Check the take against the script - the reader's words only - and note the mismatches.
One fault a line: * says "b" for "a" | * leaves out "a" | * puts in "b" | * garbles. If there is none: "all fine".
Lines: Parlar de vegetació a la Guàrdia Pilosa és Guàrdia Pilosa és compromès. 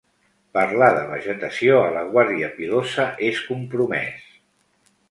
* leaves out "Guàrdia Pilosa és"